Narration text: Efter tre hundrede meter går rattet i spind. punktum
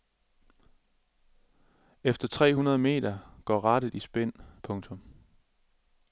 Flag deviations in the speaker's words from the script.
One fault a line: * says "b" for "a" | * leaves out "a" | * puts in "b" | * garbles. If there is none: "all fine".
all fine